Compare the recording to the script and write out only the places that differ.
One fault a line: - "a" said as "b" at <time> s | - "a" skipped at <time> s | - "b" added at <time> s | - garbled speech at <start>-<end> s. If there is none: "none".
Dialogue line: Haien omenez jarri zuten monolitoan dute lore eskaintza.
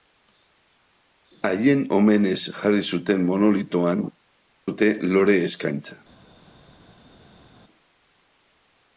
none